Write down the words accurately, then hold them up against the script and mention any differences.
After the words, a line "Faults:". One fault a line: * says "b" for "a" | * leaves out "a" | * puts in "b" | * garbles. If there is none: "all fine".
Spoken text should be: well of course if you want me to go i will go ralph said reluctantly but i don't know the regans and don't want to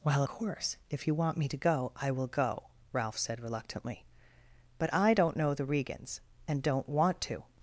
well course if you want me to go i will go ralph said reluctantly but i don't know the regans and don't want to
Faults:
* leaves out "of"